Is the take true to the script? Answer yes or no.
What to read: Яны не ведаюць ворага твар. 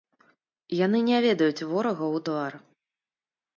no